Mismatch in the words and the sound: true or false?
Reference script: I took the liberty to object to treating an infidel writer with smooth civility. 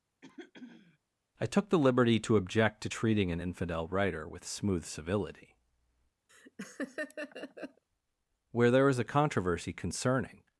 true